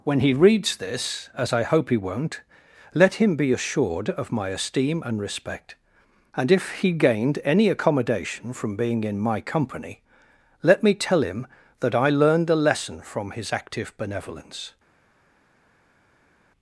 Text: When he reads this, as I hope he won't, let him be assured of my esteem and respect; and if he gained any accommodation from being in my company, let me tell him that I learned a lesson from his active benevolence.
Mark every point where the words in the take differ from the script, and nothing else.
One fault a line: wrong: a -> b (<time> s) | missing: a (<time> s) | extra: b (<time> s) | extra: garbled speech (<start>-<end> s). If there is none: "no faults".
no faults